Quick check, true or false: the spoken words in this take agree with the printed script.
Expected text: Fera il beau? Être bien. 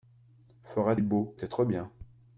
true